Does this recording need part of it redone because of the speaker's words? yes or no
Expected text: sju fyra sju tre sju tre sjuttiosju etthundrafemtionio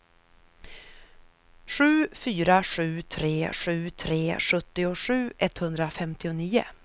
no